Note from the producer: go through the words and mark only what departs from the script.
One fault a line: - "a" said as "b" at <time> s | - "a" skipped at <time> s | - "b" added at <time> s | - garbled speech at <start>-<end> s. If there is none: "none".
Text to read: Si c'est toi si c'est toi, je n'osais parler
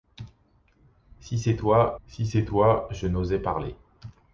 none